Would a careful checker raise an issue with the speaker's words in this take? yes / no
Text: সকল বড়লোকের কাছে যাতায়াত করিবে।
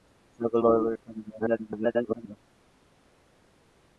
yes